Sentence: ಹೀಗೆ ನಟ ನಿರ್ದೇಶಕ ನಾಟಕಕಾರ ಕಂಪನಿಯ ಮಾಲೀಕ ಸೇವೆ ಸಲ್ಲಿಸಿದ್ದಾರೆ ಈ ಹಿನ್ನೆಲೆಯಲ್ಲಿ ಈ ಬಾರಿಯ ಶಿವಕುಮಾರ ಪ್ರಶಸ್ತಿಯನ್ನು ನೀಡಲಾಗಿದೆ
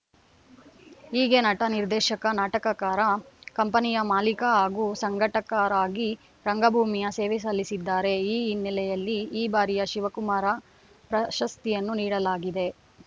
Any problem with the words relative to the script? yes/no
yes